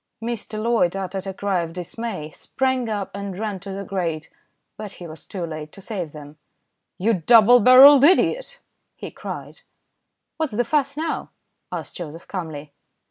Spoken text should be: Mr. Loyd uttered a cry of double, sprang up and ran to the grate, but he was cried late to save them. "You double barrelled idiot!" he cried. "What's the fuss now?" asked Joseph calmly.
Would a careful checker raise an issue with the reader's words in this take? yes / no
yes